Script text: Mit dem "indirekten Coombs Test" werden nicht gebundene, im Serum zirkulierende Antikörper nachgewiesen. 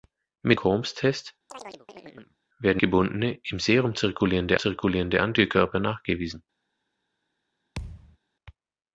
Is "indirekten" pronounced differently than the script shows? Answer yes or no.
yes